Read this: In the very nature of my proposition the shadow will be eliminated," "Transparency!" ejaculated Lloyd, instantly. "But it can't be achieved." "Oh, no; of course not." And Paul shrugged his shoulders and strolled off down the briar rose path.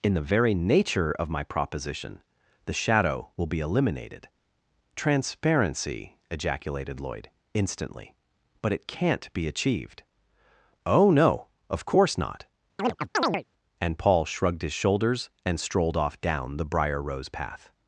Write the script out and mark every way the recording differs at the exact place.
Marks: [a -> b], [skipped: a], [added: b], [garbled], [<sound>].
In the very nature of my proposition the shadow will be eliminated," "Transparency!" ejaculated Lloyd, instantly. "But it can't be achieved." "Oh, no; of course not." [chirp] And Paul shrugged his shoulders and strolled off down the briar rose path.